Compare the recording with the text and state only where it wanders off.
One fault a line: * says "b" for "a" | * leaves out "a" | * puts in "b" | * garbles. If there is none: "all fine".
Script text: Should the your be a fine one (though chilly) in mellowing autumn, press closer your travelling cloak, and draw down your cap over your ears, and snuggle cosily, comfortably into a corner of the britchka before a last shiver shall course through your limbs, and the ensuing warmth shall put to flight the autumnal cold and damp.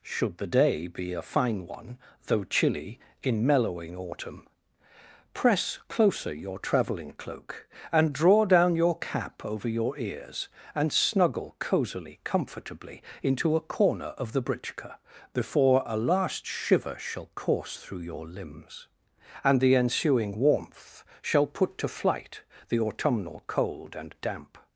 * says "day" for "your"